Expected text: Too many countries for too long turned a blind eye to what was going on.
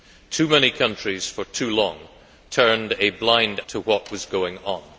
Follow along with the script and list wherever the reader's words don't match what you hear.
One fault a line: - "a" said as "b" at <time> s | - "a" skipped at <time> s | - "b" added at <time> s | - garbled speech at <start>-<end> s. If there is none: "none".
- "eye" skipped at 3.6 s